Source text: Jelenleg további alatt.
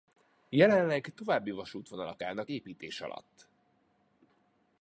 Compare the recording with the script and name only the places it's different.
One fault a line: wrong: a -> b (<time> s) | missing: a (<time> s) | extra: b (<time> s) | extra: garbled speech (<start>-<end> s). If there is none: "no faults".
extra: vasútvonalak állnak építés (1.5 s)